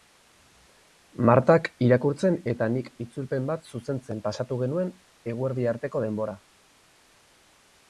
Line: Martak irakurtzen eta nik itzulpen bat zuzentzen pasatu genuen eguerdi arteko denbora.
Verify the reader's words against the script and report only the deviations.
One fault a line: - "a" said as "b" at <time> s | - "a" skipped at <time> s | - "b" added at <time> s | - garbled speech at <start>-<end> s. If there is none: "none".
none